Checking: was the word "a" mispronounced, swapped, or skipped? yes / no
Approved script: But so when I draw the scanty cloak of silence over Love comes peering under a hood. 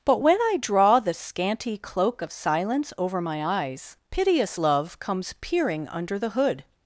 yes